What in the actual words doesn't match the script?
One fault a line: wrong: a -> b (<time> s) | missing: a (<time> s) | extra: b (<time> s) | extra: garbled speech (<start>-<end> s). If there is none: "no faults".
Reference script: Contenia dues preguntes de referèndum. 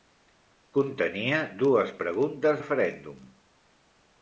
missing: de (2.6 s)